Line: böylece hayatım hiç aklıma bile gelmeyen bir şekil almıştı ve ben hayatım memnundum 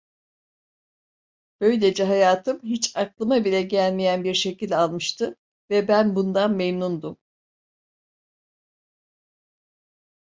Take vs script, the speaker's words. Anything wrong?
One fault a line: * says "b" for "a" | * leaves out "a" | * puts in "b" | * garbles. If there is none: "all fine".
* says "bundan" for "hayatım"